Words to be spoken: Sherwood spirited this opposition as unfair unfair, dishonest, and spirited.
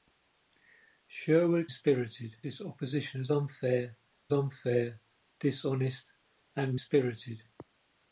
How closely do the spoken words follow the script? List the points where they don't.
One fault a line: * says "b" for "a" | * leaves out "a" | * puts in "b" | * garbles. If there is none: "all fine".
all fine